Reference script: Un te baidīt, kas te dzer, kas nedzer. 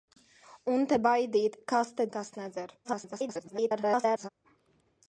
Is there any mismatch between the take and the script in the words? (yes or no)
yes